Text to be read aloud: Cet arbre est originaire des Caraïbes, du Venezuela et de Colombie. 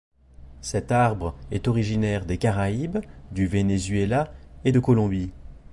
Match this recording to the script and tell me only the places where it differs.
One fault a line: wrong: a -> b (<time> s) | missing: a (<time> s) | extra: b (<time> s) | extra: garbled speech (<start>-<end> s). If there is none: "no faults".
no faults